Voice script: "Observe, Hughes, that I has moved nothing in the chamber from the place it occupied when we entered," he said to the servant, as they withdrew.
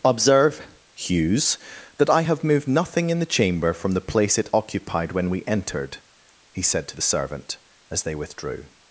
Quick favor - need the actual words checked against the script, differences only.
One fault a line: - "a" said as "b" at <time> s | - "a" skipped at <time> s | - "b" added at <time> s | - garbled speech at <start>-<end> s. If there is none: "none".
- "has" said as "have" at 2.2 s